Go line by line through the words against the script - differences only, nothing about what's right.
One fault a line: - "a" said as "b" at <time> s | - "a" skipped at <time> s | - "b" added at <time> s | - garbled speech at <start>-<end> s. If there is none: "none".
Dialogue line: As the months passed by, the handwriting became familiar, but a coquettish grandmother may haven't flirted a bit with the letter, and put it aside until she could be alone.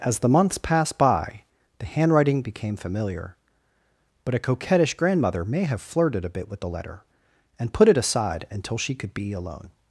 - "haven't" said as "have" at 5.7 s